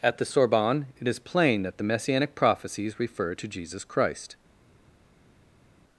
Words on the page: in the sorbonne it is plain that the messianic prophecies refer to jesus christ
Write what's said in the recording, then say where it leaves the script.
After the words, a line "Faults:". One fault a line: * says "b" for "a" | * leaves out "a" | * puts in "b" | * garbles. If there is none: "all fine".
at the sorbonne it is plain that the messianic prophecies refer to jesus christ
Faults:
* says "at" for "in"